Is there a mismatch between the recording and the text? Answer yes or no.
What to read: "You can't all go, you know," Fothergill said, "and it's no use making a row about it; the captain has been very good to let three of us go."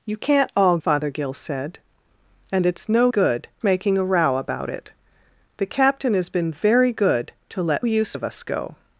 yes